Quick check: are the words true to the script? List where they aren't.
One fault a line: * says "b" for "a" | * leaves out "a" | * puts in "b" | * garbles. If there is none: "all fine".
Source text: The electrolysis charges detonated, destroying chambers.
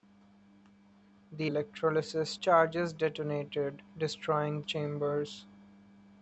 all fine